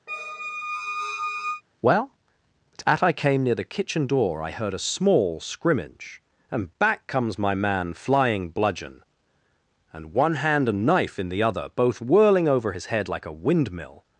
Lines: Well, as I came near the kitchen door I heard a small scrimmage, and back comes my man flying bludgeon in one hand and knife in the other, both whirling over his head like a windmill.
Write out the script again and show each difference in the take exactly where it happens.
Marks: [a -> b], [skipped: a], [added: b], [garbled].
Well, [as -> at] I came near the kitchen door I heard a small scrimmage, and back comes my man flying bludgeon [in -> and] one hand and knife in the other, both whirling over his head like a windmill.